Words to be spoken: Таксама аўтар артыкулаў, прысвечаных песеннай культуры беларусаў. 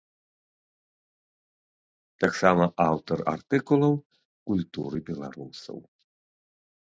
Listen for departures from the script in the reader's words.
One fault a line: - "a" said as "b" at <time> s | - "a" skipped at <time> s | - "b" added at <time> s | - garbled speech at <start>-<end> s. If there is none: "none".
- "прысвечаных песеннай" skipped at 3.9 s